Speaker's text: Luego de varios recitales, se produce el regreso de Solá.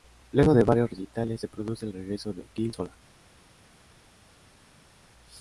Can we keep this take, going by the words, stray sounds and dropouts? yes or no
no